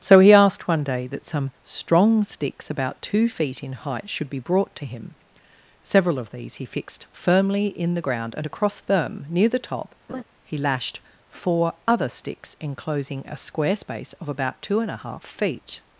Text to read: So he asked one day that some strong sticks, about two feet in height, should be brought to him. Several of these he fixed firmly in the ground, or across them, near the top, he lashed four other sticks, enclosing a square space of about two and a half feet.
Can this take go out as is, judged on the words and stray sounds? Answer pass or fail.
fail